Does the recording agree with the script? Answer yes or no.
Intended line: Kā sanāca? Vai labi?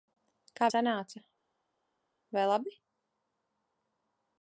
yes